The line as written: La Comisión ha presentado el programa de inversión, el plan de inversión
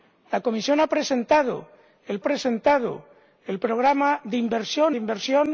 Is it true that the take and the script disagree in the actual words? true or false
true